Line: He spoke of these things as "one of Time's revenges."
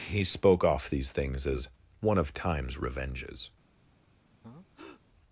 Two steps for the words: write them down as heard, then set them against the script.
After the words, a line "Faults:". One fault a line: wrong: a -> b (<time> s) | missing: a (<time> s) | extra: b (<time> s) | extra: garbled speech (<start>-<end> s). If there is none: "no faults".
He spoke off these things as "one of Time's revenges."
Faults:
wrong: of -> off (0.6 s)